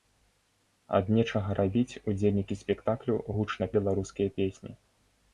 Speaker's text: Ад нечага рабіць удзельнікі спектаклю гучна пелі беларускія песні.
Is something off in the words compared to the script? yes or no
yes